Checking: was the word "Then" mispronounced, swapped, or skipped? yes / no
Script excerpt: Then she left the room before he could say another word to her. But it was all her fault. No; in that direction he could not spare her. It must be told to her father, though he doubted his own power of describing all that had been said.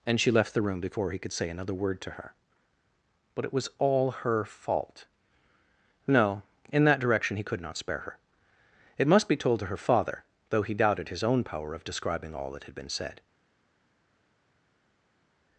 yes